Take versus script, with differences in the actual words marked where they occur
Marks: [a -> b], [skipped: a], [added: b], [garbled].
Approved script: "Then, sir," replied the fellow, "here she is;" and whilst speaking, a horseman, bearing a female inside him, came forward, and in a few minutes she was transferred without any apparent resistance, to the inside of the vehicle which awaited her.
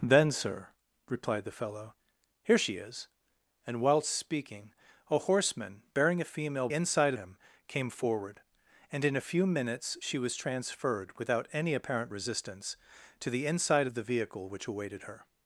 "Then, sir," replied the fellow, "here she is;" and whilst speaking, a horseman, bearing a female inside him, came forward, and in a few minutes she was transferred without any apparent resistance, to the inside of the vehicle which awaited her.